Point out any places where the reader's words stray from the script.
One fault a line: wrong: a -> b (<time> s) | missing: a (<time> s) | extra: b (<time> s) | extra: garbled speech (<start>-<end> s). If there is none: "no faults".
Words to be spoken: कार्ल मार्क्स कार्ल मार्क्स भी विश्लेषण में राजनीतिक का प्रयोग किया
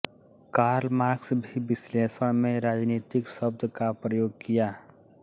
missing: कार्ल मार्क्स (1.3 s)
extra: शब्द (3.3 s)